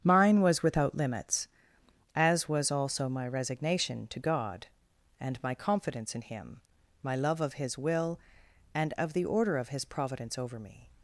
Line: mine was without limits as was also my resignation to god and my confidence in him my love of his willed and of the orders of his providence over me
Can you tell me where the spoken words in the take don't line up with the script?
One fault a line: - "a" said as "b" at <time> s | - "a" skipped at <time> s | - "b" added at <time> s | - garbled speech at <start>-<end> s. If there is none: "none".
- "willed" said as "will" at 7.8 s
- "orders" said as "order" at 9.2 s